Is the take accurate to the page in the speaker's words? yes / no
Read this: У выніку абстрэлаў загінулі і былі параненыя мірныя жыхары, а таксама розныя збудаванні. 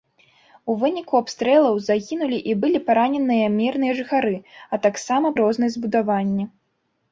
yes